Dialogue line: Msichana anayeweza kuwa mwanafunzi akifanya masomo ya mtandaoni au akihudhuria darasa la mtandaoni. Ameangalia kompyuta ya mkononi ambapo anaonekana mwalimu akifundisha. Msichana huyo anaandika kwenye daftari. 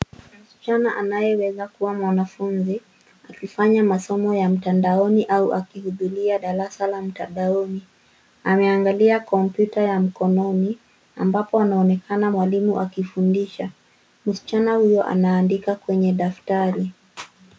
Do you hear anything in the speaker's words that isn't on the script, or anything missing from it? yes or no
no